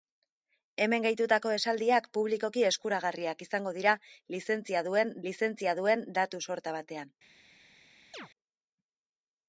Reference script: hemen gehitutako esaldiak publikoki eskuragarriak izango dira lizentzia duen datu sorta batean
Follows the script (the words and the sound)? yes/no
no